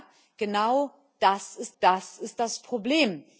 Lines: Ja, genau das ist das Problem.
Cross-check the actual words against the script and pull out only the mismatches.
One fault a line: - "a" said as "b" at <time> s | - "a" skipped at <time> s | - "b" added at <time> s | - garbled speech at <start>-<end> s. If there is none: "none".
- "ist das" added at 2.2 s